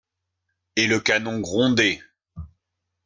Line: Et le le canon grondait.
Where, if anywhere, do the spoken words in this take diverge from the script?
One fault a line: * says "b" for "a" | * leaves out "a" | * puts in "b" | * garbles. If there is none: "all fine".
* leaves out "le"